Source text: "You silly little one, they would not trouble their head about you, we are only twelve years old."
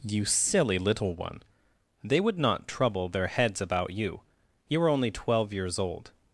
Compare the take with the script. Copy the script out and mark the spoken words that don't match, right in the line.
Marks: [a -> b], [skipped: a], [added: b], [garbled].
"You silly little one, they would not trouble their [head -> heads] about you, [we -> you] are only twelve years old."